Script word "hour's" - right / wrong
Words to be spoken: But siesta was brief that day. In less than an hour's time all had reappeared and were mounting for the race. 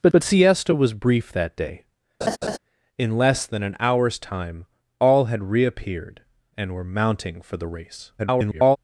right